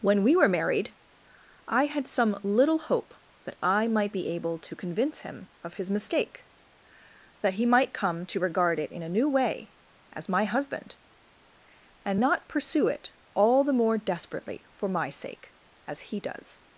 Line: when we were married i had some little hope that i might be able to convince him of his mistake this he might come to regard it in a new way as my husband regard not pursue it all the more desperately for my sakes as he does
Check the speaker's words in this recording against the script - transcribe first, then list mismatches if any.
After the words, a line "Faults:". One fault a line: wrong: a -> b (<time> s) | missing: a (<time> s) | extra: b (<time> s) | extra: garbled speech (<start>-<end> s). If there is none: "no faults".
when we were married i had some little hope that i might be able to convince him of his mistake that he might come to regard it in a new way as my husband and not pursue it all the more desperately for my sake as he does
Faults:
wrong: this -> that (7.4 s)
wrong: regard -> and (12.0 s)
wrong: sakes -> sake (15.1 s)